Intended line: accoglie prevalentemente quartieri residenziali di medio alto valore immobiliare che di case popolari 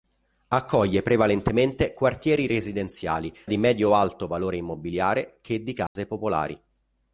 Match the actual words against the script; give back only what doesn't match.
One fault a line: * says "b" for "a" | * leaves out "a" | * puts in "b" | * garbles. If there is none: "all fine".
all fine